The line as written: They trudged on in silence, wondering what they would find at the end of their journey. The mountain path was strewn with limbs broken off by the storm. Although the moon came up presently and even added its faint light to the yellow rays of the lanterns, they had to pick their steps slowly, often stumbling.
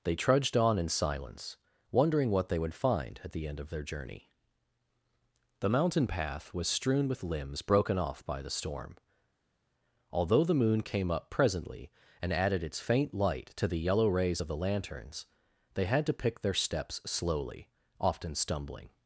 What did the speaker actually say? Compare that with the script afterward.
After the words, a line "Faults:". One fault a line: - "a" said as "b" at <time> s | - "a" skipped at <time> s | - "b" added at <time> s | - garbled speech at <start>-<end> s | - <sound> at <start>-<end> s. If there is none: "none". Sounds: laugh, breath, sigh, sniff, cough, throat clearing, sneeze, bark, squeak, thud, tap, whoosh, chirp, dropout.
They trudged on in silence, wondering what they would find at the end of their journey. The mountain path was strewn with limbs broken off by the storm. Although the moon came up presently and added its faint light to the yellow rays of the lanterns, they had to pick their steps slowly, often stumbling.
Faults:
- "even" skipped at 12.3 s